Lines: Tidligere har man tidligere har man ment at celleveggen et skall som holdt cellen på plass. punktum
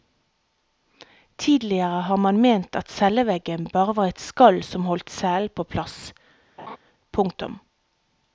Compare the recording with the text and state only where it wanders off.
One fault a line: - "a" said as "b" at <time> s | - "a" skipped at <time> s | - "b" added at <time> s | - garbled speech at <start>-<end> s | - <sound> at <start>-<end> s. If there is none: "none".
- "tidligere har man" skipped at 2.4 s
- "bare var" added at 3.7 s
- laugh at 6.6-6.8 s